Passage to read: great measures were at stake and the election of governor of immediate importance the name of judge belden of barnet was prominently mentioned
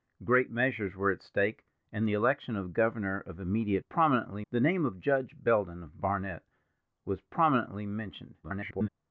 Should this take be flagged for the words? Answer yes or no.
yes